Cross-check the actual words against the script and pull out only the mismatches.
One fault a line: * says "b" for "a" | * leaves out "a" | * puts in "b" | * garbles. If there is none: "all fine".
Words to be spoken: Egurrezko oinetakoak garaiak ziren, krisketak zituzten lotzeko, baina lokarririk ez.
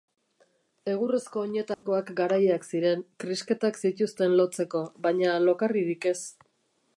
all fine